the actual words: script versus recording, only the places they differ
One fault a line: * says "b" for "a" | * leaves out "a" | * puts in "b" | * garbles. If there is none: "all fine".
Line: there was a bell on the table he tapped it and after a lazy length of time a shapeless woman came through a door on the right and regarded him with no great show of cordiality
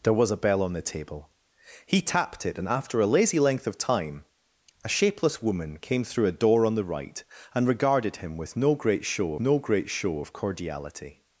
* puts in "no great show"